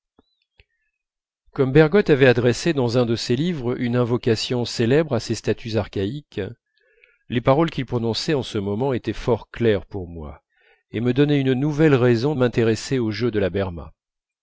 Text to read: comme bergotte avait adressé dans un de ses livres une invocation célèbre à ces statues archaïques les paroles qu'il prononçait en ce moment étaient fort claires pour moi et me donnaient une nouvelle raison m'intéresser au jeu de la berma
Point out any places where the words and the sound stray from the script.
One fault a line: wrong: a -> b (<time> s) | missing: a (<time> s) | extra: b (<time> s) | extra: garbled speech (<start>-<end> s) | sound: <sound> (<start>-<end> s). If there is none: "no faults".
no faults